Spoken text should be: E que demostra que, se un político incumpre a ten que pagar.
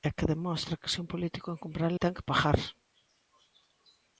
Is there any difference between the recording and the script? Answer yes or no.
no